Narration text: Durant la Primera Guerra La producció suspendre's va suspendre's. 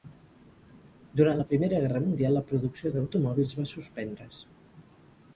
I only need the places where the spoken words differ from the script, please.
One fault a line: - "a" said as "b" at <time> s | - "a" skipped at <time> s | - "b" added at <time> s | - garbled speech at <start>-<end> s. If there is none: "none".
- "Mundial" added at 2.0 s
- "suspendre's" said as "d'automòbils" at 3.0 s